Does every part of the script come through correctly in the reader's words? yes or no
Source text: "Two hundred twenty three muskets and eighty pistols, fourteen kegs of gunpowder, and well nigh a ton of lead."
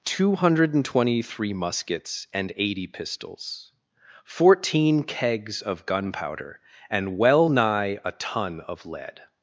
yes